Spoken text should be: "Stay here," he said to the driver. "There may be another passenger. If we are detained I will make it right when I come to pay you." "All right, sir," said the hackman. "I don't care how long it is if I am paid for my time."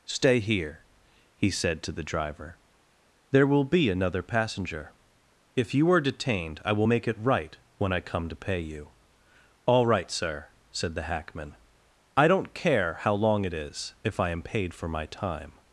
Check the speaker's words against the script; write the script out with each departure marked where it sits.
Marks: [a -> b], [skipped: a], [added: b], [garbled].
"Stay here," he said to the driver. "There [may -> will] be another passenger. If [we -> you] are detained I will make it right when I come to pay you." "All right, sir," said the hackman. "I don't care how long it is if I am paid for my time."